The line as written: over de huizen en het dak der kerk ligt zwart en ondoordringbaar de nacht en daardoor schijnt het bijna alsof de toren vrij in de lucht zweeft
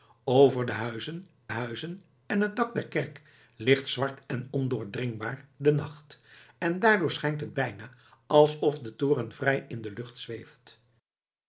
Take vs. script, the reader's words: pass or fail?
fail